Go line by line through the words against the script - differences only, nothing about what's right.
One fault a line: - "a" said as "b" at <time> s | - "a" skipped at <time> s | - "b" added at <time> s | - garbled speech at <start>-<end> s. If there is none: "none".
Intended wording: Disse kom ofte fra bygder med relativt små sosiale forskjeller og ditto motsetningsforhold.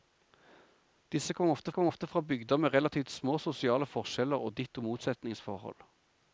- "kom ofte" added at 1.7 s